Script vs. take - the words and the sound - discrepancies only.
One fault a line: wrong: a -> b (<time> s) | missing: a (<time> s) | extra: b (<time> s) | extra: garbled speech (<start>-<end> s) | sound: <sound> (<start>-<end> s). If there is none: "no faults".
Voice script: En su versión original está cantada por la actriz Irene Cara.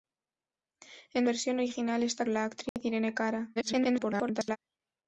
missing: su (1.3 s)
missing: cantada por (2.2 s)
sound: dropout (2.7-2.8 s)
extra: garbled speech (3.6-4.6 s)